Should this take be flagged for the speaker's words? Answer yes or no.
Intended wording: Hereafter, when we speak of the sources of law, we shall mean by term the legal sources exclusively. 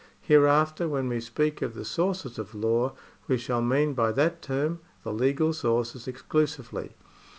yes